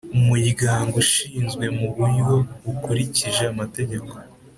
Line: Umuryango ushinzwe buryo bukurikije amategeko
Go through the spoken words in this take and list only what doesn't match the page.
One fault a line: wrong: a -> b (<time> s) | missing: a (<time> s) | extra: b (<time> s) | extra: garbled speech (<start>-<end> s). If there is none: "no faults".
extra: mu (1.8 s)